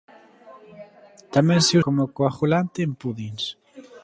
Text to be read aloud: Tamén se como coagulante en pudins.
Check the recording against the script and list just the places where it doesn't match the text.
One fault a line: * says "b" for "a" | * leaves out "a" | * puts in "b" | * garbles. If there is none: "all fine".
all fine